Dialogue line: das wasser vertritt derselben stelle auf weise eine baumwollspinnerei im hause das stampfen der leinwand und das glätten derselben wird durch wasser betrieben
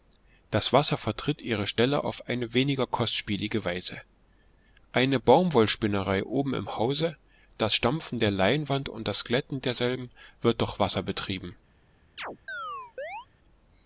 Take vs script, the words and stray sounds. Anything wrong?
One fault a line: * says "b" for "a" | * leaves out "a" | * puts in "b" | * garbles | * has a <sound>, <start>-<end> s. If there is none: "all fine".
* says "ihre" for "derselben"
* puts in "eine weniger kostspielige"
* puts in "oben"
* has a chirp, 12.2-13.3 s